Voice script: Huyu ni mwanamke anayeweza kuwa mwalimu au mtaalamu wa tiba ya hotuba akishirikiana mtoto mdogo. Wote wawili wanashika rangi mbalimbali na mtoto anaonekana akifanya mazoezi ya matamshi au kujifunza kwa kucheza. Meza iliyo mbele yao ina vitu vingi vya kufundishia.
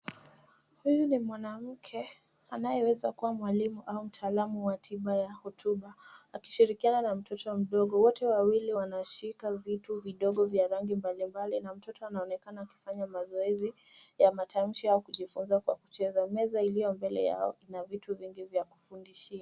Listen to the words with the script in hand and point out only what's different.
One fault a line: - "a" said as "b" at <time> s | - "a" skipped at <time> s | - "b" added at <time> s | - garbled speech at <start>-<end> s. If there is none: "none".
- "na" added at 7.0 s
- "vitu vidogo vya" added at 9.5 s